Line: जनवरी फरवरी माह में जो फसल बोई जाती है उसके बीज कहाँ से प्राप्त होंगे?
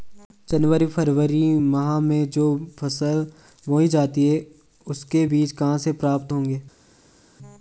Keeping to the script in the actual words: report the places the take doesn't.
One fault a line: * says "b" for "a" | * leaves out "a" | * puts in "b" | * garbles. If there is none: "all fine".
all fine